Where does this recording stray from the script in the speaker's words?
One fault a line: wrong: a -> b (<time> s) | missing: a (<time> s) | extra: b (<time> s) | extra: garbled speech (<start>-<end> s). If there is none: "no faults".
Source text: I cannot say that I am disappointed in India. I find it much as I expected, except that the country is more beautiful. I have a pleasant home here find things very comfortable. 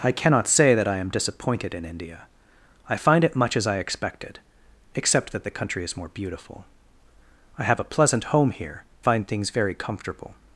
no faults